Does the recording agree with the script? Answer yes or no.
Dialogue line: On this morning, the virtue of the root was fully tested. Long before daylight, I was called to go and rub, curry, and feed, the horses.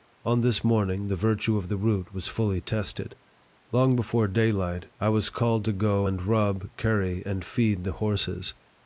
yes